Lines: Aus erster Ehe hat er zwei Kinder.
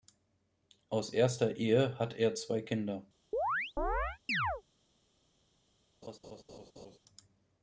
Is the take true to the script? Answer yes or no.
yes